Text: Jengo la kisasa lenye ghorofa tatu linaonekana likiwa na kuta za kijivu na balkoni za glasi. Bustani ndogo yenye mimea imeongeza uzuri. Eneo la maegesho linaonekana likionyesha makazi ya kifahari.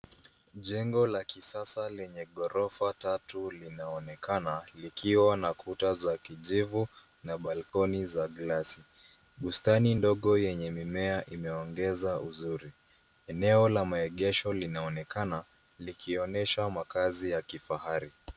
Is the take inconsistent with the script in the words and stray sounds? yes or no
yes